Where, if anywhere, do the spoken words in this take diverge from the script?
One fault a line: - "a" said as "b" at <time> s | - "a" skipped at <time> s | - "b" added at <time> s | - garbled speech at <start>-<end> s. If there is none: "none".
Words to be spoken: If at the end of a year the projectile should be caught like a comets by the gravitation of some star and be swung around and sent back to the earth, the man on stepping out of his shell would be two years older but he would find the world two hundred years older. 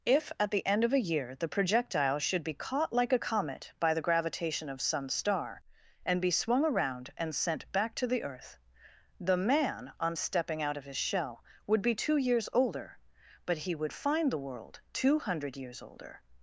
- "comets" said as "comet" at 3.2 s